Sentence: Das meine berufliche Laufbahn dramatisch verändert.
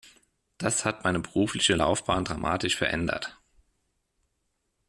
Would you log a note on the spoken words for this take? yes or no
yes